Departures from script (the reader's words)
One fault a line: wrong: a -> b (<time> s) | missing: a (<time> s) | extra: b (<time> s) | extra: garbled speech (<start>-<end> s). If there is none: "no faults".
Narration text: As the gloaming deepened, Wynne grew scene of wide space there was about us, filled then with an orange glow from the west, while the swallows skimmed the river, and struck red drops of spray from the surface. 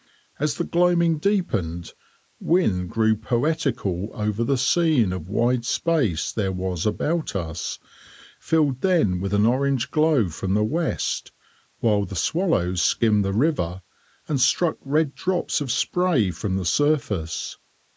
extra: poetical over the (3.1 s)